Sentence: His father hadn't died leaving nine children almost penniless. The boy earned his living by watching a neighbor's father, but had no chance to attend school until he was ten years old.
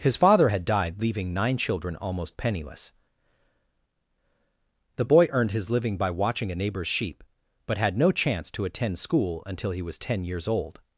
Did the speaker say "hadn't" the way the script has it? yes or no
no